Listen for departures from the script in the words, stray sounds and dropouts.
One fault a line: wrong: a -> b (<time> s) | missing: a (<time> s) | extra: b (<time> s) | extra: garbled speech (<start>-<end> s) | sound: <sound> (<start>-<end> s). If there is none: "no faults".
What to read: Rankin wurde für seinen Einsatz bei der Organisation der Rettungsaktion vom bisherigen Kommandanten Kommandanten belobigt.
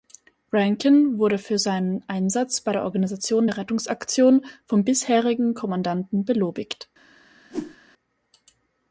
missing: Kommandanten (6.2 s)
sound: whoosh (7.5-7.8 s)